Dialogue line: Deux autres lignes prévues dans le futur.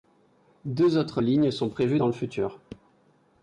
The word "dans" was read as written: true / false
true